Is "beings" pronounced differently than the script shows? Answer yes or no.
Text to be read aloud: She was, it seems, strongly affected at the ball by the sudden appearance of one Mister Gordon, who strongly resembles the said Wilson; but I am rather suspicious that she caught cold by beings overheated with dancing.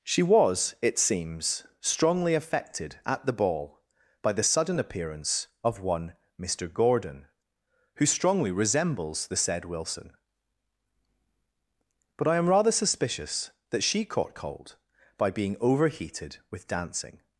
yes